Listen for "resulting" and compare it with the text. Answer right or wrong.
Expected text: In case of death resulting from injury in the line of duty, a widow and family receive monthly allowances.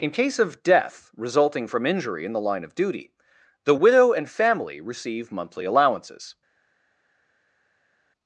right